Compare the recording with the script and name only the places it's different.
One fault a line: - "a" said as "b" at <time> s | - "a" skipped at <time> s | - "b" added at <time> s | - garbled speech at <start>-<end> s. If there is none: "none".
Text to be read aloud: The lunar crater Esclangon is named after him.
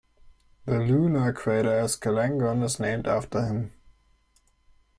none